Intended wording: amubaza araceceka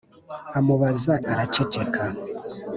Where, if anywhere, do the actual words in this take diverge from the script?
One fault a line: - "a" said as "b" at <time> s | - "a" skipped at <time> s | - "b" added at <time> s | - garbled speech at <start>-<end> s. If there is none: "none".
none